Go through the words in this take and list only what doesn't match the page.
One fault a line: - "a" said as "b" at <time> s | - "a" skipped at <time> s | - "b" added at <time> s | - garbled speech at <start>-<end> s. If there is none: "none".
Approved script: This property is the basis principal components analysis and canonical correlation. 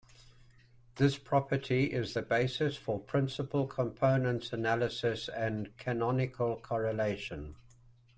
- "for" added at 2.8 s